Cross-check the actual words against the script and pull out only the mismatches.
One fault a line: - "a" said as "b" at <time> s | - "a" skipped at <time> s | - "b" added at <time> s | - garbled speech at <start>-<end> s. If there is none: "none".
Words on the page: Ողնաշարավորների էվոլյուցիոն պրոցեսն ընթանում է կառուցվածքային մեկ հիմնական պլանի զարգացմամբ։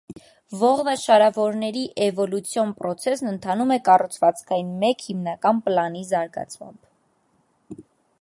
none